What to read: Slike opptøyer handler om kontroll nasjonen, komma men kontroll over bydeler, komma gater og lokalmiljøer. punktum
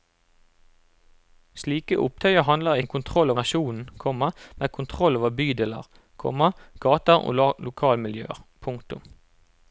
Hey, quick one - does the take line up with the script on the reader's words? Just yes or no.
yes